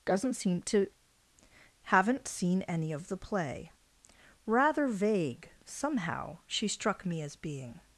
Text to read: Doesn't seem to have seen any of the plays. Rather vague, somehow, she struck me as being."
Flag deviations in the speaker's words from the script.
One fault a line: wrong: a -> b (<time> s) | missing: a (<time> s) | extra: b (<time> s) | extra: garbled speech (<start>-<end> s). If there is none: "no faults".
wrong: have -> haven't (1.8 s)
wrong: plays -> play (3.2 s)